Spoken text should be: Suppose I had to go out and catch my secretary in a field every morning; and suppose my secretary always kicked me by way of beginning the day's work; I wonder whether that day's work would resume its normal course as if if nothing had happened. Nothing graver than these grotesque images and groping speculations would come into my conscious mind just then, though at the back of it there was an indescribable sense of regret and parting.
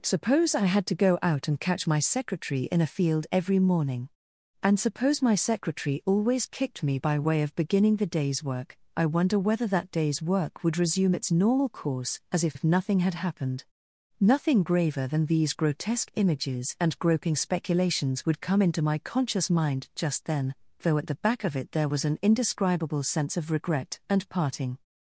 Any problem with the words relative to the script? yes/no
no